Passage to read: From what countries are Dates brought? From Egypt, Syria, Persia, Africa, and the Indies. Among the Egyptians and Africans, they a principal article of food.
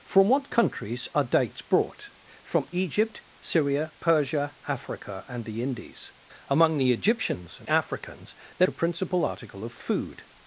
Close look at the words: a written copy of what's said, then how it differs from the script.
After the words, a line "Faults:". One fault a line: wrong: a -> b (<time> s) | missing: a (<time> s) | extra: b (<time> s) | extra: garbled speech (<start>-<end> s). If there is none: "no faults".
From what countries are Dates brought? From Egypt, Syria, Persia, Africa, and the Indies. Among the Egyptians and Africans, they a principal article of food.
Faults:
no faults